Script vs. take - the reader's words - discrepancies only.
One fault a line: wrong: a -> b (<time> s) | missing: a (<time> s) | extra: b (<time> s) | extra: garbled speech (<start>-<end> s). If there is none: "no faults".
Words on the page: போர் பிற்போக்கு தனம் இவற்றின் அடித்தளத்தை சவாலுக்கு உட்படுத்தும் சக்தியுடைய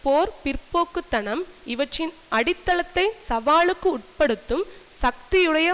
no faults